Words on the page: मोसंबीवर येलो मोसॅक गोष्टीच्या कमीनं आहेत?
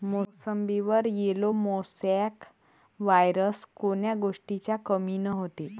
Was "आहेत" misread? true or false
true